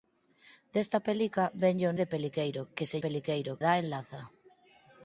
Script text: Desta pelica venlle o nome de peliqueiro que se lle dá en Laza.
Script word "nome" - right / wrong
wrong